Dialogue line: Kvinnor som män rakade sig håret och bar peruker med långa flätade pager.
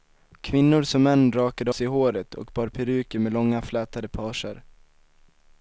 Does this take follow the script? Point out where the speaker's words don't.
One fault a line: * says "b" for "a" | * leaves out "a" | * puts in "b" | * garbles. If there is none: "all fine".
all fine